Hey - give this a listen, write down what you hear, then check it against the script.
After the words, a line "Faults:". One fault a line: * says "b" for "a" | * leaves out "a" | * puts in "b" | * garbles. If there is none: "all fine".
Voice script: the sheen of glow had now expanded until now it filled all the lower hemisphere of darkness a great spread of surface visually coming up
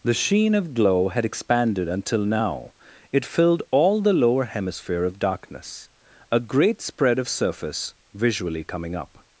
the sheen of glow had expanded until now it filled all the lower hemisphere of darkness a great spread of surface visually coming up
Faults:
* leaves out "now"